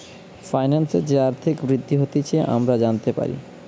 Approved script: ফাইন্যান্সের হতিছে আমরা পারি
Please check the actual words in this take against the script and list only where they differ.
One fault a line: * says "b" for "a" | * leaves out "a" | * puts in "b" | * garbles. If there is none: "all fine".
* puts in "যে আর্থিক বৃদ্ধি"
* puts in "জানতে"